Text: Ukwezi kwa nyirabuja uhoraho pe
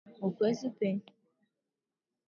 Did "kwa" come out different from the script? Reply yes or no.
yes